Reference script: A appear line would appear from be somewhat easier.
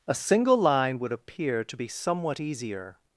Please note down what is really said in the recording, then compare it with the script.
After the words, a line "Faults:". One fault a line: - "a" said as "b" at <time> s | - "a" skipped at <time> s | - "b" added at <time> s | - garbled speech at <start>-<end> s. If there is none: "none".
A single line would appear to be somewhat easier.
Faults:
- "appear" said as "single" at 0.1 s
- "from" said as "to" at 1.6 s